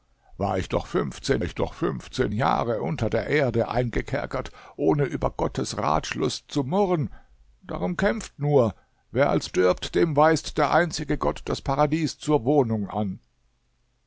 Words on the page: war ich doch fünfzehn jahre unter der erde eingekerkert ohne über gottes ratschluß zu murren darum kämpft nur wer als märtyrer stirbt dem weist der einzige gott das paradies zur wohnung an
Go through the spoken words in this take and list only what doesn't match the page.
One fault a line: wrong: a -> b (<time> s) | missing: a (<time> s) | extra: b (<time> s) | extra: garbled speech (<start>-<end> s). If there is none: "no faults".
extra: ich doch fünfzehn (1.4 s)
missing: märtyrer (9.5 s)